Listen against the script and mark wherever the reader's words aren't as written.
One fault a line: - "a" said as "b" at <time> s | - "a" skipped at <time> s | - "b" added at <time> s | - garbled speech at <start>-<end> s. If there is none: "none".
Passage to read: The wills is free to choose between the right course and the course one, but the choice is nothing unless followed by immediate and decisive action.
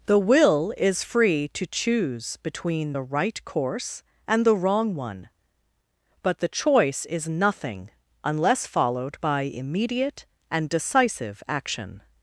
- "wills" said as "will" at 0.2 s
- "course" said as "wrong" at 4.5 s